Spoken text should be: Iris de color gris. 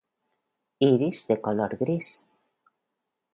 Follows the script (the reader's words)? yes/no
yes